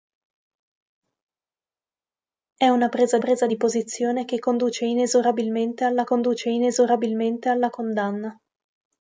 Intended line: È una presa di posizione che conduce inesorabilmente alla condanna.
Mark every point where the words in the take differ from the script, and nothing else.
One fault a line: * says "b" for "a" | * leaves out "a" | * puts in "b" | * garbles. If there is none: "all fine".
* puts in "presa"
* puts in "conduce inesorabilmente alla"